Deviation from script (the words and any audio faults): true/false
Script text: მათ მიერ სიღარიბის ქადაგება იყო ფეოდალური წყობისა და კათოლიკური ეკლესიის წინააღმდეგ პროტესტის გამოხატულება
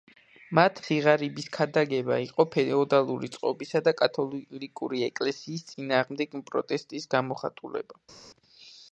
true